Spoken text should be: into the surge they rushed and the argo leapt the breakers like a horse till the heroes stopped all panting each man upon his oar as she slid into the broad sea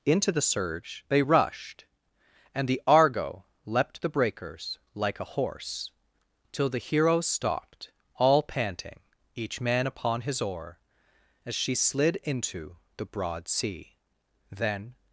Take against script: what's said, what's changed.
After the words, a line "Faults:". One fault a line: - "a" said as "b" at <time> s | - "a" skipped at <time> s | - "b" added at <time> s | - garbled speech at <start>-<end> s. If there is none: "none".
into the surge they rushed and the argo leapt the breakers like a horse till the heroes stopped all panting each man upon his oar as she slid into the broad sea then
Faults:
- "then" added at 14.5 s